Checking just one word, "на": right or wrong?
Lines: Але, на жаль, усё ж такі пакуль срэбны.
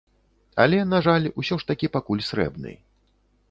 right